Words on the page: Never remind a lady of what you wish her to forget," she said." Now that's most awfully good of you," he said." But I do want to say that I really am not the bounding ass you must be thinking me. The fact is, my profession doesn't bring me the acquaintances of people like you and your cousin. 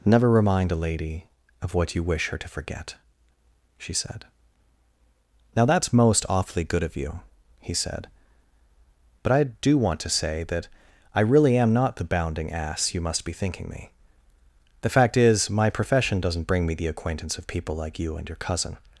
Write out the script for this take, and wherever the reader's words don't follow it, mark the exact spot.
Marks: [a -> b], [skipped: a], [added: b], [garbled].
Never remind a lady of what you wish her to forget," she said." Now that's most awfully good of you," he said." But I do want to say that I really am not the bounding ass you must be thinking me. The fact is, my profession doesn't bring me the [acquaintances -> acquaintance] of people like you and your cousin.